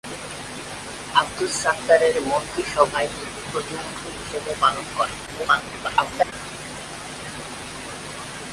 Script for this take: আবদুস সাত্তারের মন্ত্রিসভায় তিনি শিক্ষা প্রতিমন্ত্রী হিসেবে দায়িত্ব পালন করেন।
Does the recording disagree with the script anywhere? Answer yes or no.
yes